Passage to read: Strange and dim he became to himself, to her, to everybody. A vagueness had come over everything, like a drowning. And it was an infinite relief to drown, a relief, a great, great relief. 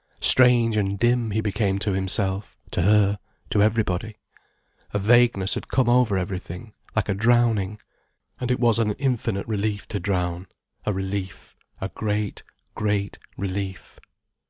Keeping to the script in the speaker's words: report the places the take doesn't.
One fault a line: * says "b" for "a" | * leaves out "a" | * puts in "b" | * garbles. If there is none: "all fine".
all fine